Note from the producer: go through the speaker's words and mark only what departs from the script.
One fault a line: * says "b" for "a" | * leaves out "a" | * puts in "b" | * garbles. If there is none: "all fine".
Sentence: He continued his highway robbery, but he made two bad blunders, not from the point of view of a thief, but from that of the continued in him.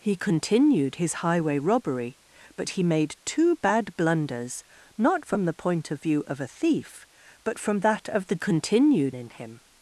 all fine